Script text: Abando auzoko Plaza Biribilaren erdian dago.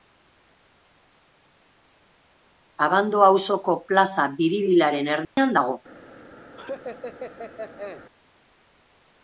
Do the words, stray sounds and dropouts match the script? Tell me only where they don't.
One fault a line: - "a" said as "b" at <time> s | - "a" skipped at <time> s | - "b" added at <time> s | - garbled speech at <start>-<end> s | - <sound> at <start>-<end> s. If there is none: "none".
- dropout at 5.2-5.4 s
- laugh at 6.6-8.1 s